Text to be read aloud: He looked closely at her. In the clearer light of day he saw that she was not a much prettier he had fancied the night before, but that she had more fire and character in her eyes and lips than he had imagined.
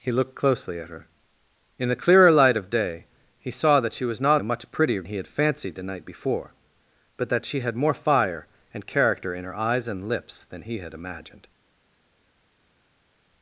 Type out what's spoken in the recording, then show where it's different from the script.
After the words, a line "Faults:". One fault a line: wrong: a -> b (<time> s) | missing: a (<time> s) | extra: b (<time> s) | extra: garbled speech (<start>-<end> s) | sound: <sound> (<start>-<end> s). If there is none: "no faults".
He looked closely at her. In the clearer light of day he saw that she was not a much prettier he had fancied the night before, but that she had more fire and character in her eyes and lips than he had imagined.
Faults:
no faults